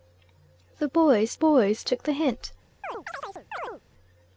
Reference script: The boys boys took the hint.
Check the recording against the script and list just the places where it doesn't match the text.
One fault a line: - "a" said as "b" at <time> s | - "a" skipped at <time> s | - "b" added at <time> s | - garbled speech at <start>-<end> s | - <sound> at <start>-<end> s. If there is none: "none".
- chirp at 2.8-3.8 s